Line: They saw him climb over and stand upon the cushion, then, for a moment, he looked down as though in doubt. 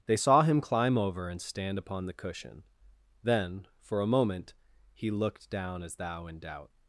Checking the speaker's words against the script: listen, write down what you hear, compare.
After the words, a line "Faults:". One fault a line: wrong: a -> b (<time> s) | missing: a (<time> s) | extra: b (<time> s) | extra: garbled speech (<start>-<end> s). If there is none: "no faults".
They saw him climb over and stand upon the cushion, then, for a moment, he looked down as thou in doubt.
Faults:
wrong: though -> thou (6.0 s)